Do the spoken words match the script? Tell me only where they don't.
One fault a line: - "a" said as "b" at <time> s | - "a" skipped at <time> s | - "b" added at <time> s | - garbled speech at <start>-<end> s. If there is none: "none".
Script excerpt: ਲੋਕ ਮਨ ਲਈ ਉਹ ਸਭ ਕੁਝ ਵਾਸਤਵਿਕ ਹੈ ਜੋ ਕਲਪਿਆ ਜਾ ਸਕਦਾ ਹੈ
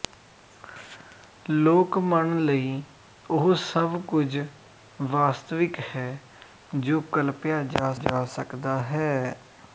- "ਜਾ" added at 7.9 s